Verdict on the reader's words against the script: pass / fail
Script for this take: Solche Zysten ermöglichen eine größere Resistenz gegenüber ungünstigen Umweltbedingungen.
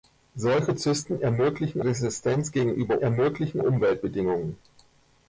fail